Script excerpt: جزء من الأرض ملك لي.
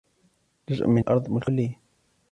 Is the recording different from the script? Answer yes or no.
no